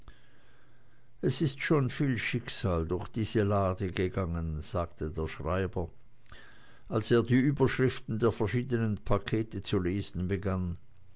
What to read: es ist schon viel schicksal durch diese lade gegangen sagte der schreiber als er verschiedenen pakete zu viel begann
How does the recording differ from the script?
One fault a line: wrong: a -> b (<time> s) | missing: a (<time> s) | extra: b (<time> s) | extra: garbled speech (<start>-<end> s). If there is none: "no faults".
extra: die überschriften der (7.2 s)
wrong: viel -> lesen (9.8 s)